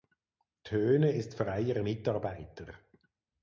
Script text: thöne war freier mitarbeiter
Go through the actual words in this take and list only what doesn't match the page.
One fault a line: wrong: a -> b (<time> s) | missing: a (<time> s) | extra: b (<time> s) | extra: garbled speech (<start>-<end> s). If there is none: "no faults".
wrong: war -> ist (1.1 s)